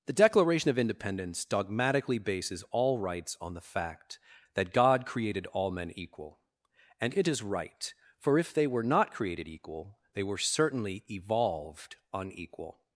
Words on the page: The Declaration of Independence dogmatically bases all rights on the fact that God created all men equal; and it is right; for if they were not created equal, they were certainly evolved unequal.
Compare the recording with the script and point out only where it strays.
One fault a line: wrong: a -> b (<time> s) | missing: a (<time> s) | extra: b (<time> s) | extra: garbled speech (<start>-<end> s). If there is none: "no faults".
no faults